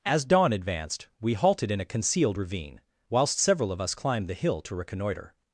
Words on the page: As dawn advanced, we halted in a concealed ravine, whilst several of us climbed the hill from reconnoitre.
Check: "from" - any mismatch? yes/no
yes